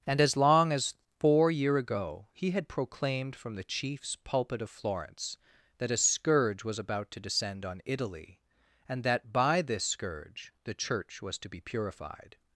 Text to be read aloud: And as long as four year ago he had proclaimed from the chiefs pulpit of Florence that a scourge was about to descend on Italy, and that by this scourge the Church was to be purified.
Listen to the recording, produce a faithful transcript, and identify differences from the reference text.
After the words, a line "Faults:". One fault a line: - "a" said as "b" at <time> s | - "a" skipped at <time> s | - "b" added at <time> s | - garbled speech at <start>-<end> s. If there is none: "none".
And as long as four year ago he had proclaimed from the chiefs pulpit of Florence that a scourge was about to descend on Italy, and that by this scourge the Church was to be purified.
Faults:
none